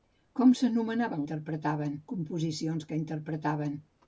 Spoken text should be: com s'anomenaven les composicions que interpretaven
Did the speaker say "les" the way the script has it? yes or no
no